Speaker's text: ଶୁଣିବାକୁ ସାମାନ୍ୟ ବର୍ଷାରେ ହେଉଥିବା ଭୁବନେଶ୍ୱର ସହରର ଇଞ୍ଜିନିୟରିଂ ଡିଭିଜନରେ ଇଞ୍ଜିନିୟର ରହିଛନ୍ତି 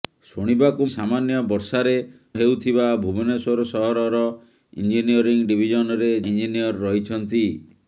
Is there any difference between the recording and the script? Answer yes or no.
no